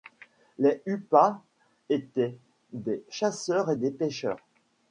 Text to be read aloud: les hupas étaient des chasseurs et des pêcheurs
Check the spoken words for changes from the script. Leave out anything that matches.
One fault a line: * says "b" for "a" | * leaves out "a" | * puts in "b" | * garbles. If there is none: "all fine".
all fine